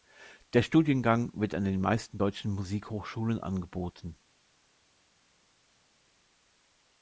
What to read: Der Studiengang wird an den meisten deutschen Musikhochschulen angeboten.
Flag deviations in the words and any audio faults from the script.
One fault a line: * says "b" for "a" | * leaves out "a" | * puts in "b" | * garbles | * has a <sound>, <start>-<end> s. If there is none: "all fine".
all fine